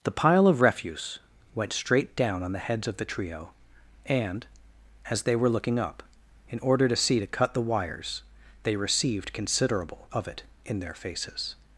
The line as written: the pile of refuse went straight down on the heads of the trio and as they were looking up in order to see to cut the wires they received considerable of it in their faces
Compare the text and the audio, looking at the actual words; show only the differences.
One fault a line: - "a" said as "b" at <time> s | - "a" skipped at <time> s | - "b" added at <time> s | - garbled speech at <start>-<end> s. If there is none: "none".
none